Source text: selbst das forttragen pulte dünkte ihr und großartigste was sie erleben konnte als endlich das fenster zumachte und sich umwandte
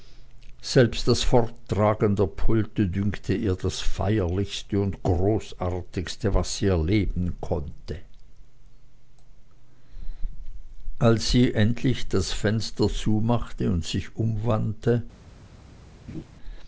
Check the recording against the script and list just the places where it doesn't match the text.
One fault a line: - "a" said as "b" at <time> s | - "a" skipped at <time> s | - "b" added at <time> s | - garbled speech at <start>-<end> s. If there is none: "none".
- "der" added at 2.1 s
- "das feierlichste" added at 3.6 s
- "sie" added at 11.3 s